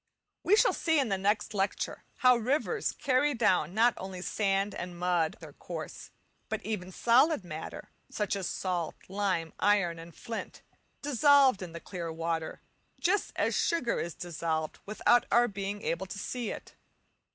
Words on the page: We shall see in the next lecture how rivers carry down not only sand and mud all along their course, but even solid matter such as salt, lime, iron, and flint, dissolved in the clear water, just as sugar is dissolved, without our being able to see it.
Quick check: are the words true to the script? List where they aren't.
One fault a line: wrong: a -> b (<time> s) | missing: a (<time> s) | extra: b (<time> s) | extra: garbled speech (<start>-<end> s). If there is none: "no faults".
missing: all along (5.4 s)